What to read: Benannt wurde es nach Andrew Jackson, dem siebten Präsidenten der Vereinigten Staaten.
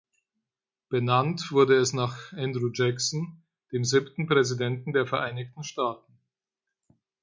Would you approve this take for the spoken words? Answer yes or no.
yes